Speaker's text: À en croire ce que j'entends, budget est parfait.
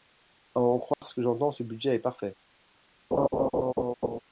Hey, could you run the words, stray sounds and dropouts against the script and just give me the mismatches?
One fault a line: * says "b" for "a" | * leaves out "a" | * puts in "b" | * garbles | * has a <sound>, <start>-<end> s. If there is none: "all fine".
* has a dropout, 0.9-1.0 s
* puts in "ce"
* has a laugh, 3.1-4.2 s